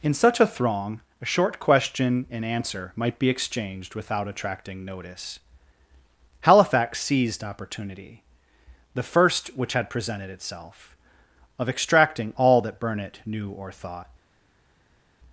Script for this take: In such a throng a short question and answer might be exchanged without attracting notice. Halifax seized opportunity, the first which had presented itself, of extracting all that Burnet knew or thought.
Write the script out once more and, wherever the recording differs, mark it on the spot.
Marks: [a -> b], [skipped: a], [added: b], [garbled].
In such a throng a short question and answer might be exchanged without attracting notice. Halifax seized opportunity, the first which had presented itself, of extracting all that Burnet knew or thought.